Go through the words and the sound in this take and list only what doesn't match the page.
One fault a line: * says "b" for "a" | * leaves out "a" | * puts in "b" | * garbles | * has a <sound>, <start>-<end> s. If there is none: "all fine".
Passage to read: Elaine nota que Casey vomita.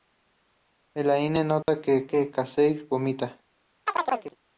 * has a dropout, 1.6-1.7 s
* puts in "que"
* has a chirp, 3.9-4.4 s